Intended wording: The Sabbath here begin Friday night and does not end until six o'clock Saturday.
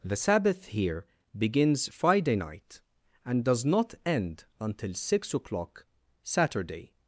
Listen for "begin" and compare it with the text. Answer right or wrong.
wrong